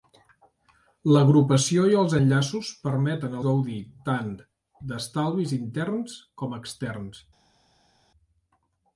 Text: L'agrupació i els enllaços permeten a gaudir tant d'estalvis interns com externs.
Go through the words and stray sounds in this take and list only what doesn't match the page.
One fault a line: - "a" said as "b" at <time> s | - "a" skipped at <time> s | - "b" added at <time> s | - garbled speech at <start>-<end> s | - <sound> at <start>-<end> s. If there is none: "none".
none